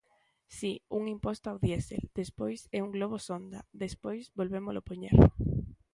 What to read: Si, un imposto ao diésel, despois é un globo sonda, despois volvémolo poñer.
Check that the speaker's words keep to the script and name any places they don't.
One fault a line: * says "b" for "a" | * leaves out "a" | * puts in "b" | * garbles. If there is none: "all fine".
all fine